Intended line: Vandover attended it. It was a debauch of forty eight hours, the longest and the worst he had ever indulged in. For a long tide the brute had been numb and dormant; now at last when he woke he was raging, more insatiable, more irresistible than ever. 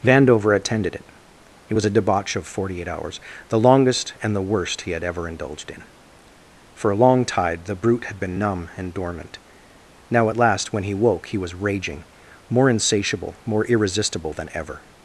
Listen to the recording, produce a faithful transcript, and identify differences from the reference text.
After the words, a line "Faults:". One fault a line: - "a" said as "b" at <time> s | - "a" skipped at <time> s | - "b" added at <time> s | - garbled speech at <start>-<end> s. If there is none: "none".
Vandover attended it. It was a debauch of forty eight hours, the longest and the worst he had ever indulged in. For a long tide the brute had been numb and dormant; now at last when he woke he was raging, more insatiable, more irresistible than ever.
Faults:
none